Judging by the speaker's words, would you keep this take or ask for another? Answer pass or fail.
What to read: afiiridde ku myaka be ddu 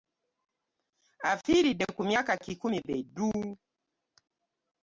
fail